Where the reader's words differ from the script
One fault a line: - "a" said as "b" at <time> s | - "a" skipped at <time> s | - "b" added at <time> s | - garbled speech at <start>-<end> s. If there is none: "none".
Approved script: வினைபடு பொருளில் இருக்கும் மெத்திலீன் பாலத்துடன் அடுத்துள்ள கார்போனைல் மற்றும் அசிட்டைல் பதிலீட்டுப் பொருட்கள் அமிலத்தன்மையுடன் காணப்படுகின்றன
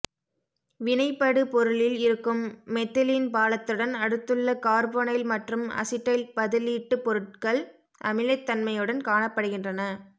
none